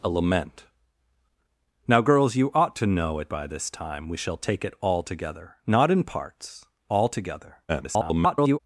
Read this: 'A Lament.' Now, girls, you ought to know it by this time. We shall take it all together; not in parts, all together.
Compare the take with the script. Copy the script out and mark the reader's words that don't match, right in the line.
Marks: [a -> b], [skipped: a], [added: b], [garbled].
'A Lament.' Now, girls, you ought to know it by this time. We shall take it all together; not in parts, all together. [garbled]